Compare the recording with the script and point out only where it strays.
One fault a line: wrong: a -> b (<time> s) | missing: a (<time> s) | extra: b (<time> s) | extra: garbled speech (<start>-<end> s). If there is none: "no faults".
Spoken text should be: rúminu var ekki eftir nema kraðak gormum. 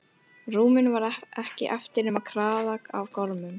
extra: af (3.0 s)